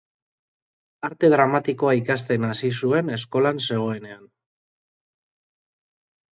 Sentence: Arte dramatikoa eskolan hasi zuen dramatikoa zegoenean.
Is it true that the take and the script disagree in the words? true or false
true